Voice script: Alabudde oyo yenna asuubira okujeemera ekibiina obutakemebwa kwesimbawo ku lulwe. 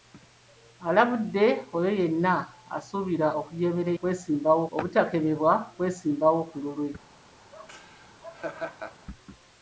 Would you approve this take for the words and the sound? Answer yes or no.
no